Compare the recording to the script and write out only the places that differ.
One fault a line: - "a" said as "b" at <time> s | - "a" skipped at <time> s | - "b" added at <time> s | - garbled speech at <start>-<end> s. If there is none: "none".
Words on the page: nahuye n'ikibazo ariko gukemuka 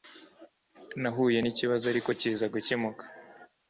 - "kiza" added at 2.2 s